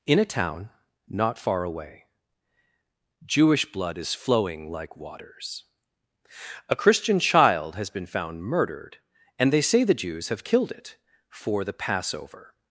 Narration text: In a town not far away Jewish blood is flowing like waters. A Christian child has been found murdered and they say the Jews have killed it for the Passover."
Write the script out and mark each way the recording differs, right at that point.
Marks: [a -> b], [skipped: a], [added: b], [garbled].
In a town not far away Jewish blood is flowing like waters. A Christian child has been found murdered and they say the Jews have killed it for the Passover."